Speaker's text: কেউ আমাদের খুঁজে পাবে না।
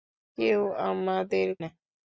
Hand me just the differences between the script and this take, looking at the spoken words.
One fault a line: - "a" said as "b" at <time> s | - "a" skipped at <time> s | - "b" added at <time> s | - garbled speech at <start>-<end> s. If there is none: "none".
- "খুঁজে পাবে" skipped at 1.5 s